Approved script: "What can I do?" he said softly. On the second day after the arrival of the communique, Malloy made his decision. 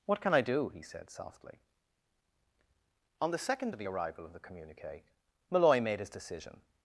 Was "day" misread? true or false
true